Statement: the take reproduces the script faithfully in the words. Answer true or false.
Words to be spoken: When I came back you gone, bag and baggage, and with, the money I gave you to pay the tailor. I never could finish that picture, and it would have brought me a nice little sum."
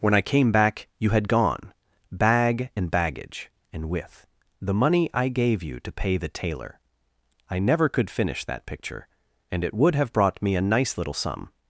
false